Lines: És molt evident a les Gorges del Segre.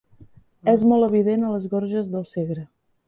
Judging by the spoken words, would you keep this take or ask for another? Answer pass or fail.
pass